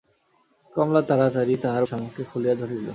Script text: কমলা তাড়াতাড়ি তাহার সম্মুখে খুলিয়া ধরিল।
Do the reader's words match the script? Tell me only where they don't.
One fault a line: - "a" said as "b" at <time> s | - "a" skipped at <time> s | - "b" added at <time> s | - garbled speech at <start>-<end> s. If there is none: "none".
none